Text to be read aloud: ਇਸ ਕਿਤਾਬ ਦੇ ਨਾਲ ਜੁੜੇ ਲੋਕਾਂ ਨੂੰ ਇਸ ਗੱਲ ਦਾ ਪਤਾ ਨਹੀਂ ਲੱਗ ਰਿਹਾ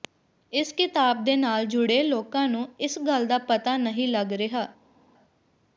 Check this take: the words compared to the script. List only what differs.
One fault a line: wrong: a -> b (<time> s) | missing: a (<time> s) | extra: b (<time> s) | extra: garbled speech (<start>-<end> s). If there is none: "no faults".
no faults